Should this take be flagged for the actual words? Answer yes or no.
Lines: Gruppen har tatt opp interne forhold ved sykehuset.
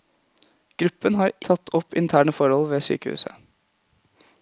no